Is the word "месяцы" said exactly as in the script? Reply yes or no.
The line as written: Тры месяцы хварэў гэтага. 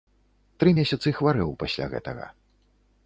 yes